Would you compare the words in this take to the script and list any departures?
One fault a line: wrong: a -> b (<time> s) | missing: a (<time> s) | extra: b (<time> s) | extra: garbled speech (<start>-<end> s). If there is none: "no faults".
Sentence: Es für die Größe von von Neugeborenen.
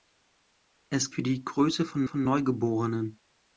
no faults